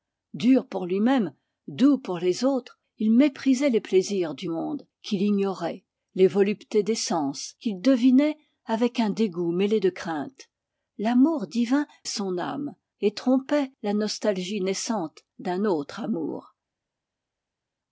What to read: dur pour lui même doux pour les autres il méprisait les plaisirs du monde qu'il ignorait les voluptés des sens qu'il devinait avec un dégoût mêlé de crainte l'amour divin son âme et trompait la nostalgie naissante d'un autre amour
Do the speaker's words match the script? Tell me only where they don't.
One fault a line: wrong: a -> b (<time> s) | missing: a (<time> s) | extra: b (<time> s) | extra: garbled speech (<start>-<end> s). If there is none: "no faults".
no faults